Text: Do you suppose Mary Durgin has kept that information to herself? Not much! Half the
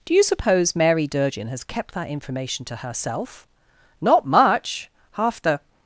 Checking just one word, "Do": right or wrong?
right